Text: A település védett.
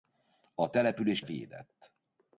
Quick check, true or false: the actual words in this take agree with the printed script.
true